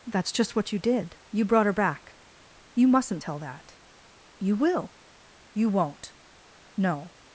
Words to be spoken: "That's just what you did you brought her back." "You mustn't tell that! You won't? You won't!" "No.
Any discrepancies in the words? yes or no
yes